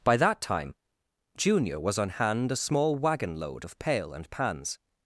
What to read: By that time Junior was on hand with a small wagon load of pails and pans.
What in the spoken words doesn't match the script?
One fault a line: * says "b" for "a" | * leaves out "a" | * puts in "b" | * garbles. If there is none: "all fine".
* leaves out "with"
* says "pail" for "pails"